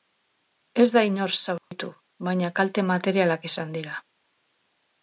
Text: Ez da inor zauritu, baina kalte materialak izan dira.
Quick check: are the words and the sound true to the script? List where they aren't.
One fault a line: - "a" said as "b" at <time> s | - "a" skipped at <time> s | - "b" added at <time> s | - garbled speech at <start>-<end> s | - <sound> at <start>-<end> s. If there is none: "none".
- dropout at 1.6-1.7 s